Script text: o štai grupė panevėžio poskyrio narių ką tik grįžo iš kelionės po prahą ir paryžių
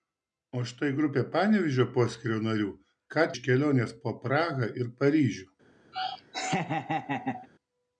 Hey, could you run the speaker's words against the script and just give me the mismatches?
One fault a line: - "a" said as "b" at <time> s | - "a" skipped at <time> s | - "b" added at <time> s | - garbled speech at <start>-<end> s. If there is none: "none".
- "tik grįžo" skipped at 3.3 s